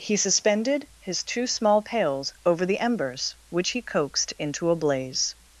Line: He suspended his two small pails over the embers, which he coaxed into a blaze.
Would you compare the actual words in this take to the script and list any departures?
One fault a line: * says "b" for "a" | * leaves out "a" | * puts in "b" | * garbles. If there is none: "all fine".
all fine